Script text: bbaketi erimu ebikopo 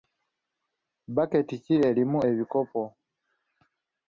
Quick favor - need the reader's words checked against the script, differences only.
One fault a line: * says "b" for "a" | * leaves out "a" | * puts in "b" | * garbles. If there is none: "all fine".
* puts in "ki"